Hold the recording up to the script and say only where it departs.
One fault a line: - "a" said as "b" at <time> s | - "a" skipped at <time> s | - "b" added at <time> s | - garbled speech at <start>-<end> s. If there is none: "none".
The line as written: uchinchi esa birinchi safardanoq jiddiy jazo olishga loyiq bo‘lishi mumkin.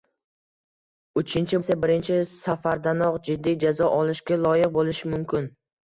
none